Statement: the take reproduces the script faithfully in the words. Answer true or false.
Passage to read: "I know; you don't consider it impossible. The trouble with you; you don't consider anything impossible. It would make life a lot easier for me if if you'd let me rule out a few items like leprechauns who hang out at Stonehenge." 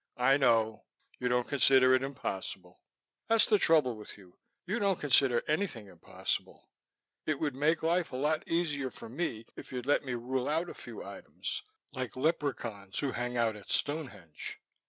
false